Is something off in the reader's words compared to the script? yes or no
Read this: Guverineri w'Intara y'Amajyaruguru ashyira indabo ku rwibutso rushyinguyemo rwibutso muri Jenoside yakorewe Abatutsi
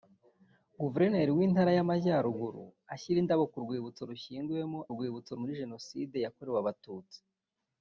no